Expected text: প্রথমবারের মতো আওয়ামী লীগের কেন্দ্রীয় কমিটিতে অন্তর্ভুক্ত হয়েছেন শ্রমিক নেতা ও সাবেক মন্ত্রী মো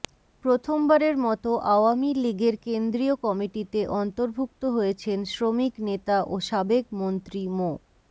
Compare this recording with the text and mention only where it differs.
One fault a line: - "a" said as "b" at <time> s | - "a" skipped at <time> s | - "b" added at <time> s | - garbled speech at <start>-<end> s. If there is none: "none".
none